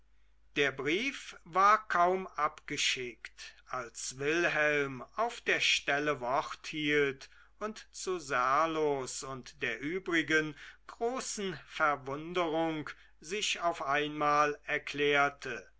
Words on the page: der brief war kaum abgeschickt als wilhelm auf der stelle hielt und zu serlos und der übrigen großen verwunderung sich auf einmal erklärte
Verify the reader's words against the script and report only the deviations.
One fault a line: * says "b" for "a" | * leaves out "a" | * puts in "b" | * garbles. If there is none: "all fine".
* puts in "wort"